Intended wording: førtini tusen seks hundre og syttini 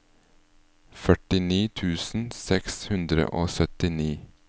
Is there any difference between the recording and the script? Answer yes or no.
no